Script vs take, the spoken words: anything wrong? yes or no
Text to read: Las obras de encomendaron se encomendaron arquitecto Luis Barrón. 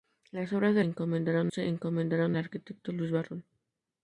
no